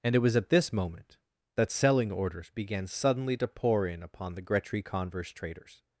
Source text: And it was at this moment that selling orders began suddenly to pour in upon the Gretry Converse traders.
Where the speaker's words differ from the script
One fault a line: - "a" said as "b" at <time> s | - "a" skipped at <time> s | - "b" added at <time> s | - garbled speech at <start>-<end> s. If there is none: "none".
none